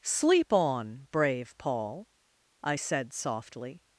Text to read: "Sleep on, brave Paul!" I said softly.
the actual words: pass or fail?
pass